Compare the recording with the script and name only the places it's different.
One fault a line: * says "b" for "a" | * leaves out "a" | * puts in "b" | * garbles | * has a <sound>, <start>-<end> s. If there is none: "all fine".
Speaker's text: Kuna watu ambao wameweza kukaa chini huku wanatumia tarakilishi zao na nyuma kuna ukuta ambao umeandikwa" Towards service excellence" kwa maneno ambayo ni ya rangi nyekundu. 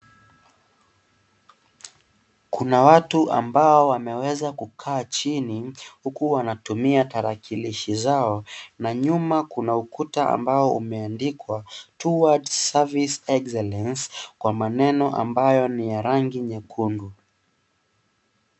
all fine